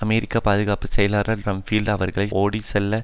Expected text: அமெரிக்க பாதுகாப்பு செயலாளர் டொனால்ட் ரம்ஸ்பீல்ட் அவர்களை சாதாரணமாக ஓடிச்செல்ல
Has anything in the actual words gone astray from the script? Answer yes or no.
yes